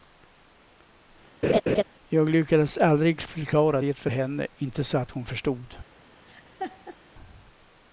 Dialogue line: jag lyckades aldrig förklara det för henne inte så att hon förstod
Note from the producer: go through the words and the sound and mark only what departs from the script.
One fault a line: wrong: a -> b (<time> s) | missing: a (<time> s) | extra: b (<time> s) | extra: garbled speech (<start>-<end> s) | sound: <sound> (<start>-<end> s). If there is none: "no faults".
sound: laugh (1.4-1.8 s)
sound: laugh (6.2-7.0 s)